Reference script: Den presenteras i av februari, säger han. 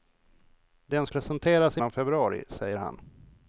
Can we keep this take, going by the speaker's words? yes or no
yes